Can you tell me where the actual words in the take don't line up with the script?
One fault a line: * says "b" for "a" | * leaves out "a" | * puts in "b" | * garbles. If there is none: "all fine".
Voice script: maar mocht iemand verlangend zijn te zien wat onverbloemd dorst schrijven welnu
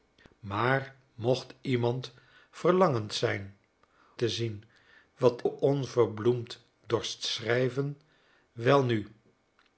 all fine